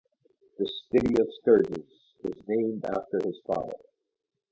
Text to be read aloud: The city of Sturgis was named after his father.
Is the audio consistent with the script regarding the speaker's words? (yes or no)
yes